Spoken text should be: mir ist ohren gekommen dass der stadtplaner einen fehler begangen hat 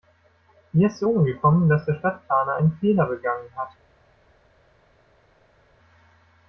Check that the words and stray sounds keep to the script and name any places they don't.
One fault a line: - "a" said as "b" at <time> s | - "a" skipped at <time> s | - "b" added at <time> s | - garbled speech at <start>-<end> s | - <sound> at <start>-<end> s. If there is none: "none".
- "zu" added at 1.0 s